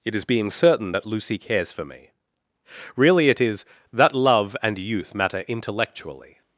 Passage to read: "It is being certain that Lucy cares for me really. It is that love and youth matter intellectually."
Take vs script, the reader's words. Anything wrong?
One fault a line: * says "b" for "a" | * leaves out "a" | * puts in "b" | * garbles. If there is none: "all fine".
all fine